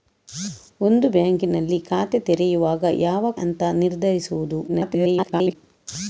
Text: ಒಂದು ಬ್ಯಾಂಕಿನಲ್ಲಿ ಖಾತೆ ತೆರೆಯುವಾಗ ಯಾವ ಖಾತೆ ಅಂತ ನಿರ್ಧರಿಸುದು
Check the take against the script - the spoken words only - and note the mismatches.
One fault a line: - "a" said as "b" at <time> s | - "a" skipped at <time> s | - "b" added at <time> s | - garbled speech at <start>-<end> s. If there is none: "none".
- "ಖಾತೆ" skipped at 3.3 s
- garbled speech at 4.7-5.6 s